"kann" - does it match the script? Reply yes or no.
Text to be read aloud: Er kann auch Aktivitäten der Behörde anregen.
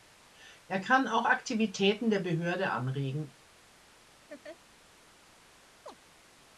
yes